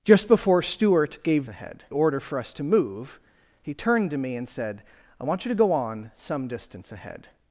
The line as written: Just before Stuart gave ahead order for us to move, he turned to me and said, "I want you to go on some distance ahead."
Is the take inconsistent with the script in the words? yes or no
no